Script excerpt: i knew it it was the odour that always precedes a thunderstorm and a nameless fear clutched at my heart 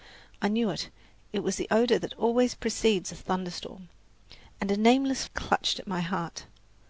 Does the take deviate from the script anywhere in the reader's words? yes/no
yes